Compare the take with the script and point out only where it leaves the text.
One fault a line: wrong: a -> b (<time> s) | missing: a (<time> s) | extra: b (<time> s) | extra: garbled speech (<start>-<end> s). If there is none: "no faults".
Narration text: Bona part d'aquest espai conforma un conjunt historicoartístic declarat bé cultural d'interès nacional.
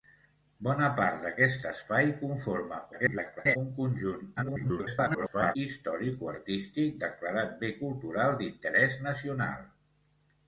extra: garbled speech (2.9-3.6 s)
extra: garbled speech (4.4-5.6 s)